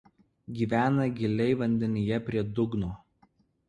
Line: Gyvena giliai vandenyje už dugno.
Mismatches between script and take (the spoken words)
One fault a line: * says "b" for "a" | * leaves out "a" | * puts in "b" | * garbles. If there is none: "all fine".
* says "prie" for "už"